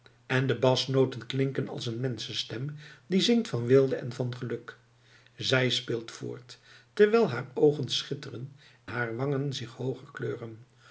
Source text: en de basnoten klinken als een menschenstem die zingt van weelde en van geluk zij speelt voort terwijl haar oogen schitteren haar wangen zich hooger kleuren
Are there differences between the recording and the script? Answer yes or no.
no